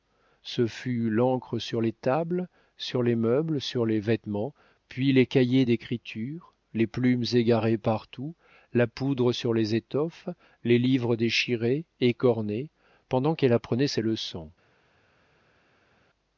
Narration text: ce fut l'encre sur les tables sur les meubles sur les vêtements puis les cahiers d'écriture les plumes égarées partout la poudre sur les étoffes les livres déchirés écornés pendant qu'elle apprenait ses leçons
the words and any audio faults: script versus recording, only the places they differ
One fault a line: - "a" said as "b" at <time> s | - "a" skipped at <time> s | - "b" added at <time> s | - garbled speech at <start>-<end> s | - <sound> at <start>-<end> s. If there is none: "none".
none